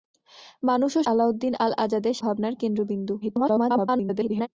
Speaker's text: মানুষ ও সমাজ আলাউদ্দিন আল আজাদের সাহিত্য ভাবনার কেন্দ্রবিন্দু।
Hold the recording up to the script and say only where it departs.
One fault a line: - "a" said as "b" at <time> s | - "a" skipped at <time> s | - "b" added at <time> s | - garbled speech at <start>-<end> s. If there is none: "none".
- "সমাজ" skipped at 1.0 s
- "সাহিত্য" skipped at 2.1 s
- garbled speech at 3.2-4.5 s